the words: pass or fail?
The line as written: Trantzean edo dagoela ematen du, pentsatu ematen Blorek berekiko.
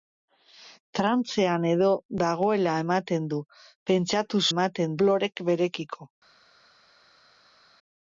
pass